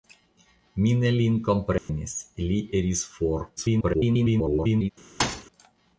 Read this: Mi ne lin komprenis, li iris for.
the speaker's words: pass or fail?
fail